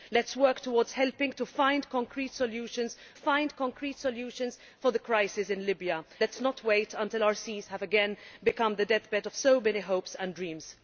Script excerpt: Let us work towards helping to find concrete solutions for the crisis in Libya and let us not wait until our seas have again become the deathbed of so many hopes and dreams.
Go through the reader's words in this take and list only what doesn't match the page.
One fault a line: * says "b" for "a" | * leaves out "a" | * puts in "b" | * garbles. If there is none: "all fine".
* puts in "find concrete solutions"
* leaves out "and"